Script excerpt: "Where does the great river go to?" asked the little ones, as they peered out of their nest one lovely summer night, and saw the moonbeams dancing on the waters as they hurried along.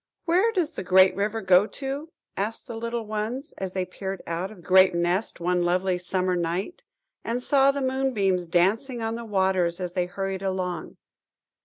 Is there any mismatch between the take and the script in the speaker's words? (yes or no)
yes